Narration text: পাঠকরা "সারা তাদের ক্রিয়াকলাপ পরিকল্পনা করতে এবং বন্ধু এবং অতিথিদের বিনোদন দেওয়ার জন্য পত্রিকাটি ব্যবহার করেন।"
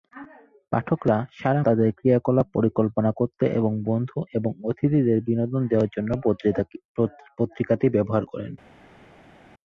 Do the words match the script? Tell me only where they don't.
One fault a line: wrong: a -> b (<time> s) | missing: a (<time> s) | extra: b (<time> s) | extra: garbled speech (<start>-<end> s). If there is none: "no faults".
no faults